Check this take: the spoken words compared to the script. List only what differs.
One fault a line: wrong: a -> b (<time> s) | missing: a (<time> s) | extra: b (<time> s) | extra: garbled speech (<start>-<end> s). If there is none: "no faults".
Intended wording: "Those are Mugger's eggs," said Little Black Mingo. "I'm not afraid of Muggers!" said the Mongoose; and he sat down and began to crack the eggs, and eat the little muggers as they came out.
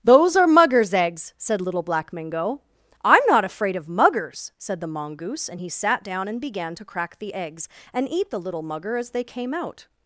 wrong: muggers -> mugger (8.6 s)